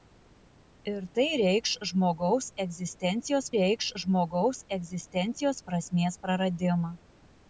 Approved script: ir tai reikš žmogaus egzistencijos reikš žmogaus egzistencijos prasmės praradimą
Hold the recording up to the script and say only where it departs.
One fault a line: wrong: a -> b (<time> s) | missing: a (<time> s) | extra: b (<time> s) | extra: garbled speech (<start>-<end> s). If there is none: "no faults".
no faults